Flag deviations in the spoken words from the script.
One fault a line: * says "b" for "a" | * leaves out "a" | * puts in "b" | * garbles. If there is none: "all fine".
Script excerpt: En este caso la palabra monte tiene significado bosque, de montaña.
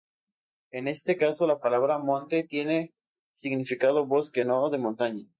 * puts in "no"